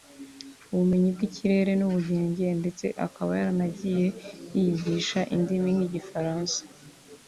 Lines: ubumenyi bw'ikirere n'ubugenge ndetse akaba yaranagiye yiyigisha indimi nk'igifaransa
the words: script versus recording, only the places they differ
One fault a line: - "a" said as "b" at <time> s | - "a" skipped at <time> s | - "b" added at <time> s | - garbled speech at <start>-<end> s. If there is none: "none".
none